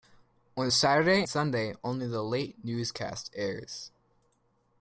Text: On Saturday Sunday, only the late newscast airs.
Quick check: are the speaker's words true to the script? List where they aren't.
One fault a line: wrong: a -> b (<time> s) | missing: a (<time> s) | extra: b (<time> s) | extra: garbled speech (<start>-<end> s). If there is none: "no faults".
no faults